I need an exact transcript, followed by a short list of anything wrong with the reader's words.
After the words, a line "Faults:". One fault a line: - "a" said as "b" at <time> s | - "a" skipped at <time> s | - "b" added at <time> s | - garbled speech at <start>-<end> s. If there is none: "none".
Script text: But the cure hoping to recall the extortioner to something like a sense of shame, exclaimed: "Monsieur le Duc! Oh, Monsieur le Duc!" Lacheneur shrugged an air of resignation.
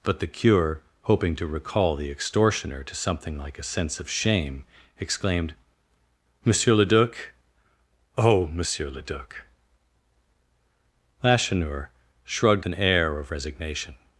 But the cure hoping to recall the extortioner to something like a sense of shame, exclaimed: "Monsieur le Duc! Oh, Monsieur le Duc!" Lacheneur shrugged an air of resignation.
Faults:
none